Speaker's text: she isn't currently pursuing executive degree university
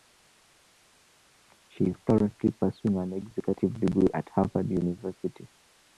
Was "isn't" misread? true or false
true